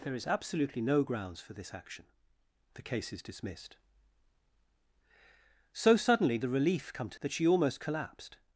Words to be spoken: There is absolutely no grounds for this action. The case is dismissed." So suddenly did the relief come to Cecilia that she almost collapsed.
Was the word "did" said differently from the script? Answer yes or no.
yes